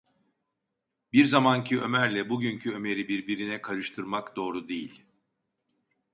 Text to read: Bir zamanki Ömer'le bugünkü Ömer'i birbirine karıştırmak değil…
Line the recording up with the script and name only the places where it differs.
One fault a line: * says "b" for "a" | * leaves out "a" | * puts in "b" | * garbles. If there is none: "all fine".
* puts in "doğru"